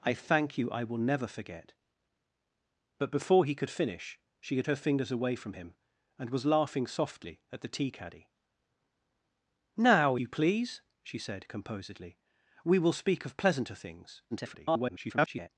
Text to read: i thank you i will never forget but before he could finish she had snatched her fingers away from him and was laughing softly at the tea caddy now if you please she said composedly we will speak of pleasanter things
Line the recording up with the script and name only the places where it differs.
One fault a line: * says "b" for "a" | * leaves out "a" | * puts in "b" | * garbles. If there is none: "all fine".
* leaves out "snatched"
* leaves out "if"
* garbles